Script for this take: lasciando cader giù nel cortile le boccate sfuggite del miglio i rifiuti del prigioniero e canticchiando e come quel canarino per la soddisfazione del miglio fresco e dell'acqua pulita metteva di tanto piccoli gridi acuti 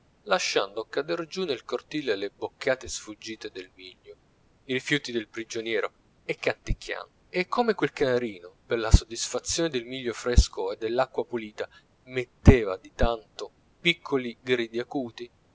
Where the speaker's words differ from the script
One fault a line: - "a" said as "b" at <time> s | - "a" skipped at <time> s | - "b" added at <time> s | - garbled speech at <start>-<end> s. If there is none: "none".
none